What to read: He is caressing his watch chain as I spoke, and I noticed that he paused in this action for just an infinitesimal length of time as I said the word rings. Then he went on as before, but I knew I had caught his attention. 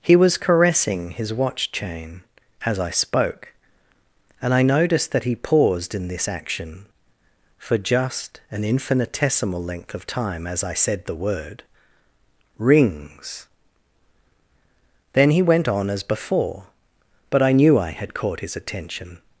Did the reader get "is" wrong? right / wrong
wrong